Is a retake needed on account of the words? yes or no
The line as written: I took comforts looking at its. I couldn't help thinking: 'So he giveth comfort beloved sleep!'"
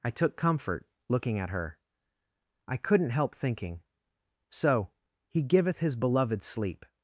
yes